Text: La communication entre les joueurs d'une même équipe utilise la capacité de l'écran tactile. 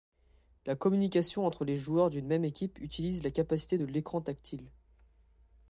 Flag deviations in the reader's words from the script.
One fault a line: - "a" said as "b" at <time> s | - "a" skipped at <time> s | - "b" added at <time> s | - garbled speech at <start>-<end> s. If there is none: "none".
none